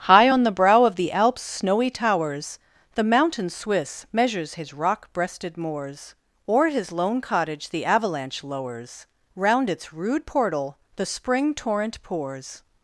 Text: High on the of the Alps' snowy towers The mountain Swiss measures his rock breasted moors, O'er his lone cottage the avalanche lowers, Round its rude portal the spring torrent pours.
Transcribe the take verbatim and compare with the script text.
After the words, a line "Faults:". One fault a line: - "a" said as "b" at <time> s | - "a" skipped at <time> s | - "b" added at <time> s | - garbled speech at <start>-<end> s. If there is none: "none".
High on the brow of the Alps' snowy towers The mountain Swiss measures his rock breasted moors, O'er his lone cottage the avalanche lowers, Round its rude portal the spring torrent pours.
Faults:
- "brow" added at 0.5 s